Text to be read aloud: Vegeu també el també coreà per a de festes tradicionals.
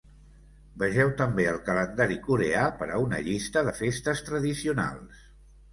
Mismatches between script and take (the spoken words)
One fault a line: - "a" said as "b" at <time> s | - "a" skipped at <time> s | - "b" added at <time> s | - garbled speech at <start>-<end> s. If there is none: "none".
- "també" said as "calendari" at 1.7 s
- "una llista" added at 3.1 s